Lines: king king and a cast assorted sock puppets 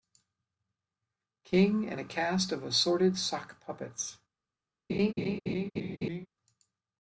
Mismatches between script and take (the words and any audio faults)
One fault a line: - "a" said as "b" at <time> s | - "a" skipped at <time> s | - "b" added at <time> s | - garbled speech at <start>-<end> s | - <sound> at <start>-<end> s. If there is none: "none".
- "king" skipped at 1.9 s
- "of" added at 2.5 s
- laugh at 4.9-6.3 s